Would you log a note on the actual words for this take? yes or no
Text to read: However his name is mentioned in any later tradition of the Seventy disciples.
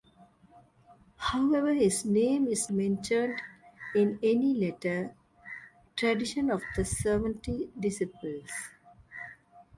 no